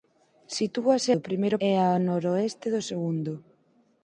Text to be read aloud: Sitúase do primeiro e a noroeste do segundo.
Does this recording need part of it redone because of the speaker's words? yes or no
no